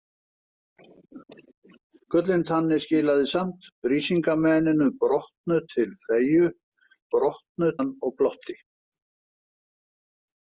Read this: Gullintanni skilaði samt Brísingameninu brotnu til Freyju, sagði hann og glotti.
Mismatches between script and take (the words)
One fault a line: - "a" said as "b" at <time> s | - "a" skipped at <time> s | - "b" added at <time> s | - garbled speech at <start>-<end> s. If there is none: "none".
- "sagði" said as "brotnu" at 7.2 s